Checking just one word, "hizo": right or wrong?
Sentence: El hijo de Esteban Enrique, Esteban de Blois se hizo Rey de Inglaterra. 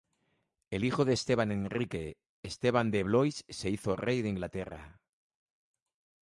right